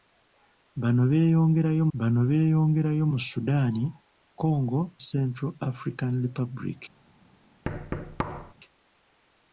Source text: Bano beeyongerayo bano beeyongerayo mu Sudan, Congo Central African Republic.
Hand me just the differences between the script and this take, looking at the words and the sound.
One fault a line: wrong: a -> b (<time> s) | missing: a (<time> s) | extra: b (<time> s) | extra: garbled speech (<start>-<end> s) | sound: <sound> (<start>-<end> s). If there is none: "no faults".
sound: thud (7.6-8.5 s)